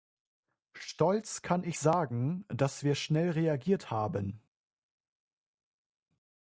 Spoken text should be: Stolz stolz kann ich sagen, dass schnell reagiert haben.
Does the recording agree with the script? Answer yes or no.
no